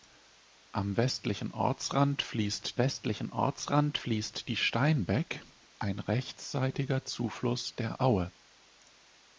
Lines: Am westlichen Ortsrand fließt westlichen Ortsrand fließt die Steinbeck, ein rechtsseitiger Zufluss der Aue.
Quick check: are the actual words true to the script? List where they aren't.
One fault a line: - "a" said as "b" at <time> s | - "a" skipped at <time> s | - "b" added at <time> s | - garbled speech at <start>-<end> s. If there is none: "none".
none